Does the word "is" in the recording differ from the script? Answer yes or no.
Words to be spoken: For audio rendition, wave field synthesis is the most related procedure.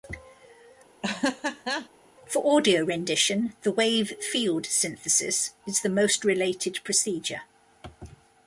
no